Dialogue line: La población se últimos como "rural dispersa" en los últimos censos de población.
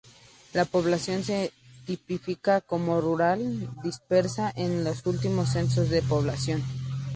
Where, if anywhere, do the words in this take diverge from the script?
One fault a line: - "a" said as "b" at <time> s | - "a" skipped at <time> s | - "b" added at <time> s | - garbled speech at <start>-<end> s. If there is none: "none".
- "últimos" said as "tipifica" at 1.9 s